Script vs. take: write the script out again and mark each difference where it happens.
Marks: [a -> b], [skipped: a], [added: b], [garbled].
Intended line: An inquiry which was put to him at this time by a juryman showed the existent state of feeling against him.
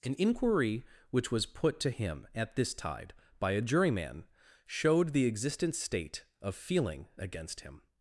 An inquiry which was put to him at this [time -> tide] by a juryman showed the existent state of feeling against him.